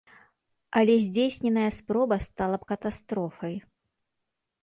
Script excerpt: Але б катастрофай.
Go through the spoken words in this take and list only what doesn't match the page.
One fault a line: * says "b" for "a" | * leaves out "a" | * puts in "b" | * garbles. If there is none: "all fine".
* puts in "здзейсненая спроба стала"